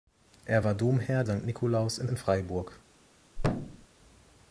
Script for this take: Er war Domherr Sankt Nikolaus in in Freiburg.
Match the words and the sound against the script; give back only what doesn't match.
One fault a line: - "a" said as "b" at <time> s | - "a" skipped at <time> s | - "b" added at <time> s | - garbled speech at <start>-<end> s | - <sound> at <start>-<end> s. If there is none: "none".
- thud at 3.4-3.9 s